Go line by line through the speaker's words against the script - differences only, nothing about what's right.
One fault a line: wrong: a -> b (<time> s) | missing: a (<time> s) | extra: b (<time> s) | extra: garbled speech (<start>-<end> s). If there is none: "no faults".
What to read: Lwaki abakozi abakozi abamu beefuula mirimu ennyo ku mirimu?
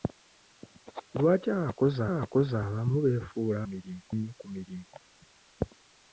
no faults